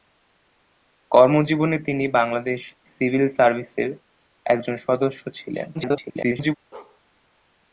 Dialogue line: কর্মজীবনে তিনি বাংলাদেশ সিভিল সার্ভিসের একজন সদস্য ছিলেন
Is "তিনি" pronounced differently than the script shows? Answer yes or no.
no